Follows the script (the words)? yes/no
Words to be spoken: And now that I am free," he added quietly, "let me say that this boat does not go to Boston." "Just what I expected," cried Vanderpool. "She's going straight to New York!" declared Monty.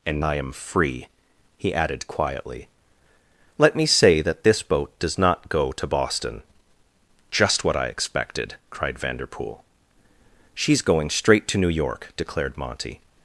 no